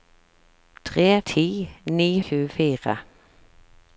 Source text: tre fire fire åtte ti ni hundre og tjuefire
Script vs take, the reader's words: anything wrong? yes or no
yes